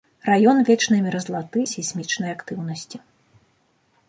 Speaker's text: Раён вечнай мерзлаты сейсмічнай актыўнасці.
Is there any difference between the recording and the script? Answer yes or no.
no